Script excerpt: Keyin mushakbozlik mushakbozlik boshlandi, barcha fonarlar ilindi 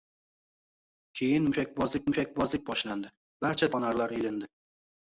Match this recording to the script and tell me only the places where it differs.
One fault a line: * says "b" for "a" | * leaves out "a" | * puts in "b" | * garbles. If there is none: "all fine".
all fine